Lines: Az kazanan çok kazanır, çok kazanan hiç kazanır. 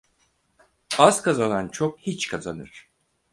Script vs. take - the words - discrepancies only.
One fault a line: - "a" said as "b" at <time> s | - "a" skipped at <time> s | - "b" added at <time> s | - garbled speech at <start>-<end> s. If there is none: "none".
- "kazanır çok kazanan" skipped at 2.0 s